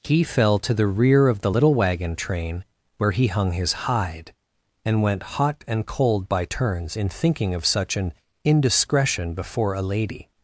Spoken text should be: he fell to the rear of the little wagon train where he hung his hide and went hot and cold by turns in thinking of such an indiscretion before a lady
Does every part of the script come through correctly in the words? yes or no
yes